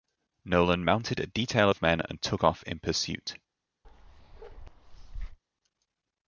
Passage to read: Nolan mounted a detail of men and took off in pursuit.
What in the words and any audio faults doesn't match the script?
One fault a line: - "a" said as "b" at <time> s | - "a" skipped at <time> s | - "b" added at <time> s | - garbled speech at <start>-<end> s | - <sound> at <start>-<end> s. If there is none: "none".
- bark at 3.8-5.4 s